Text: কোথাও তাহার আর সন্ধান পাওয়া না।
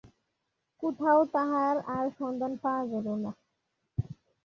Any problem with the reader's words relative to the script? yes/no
yes